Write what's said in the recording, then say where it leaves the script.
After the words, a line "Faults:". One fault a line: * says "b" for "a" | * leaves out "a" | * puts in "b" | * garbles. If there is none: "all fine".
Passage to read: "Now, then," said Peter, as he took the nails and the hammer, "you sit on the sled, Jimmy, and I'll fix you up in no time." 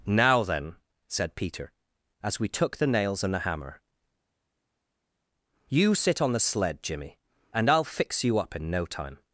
"Now, then," said Peter, as we took the nails and the hammer, "you sit on the sled, Jimmy, and I'll fix you up in no time."
Faults:
* says "we" for "he"